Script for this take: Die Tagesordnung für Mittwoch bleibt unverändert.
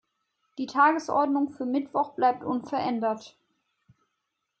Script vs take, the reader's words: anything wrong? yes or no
no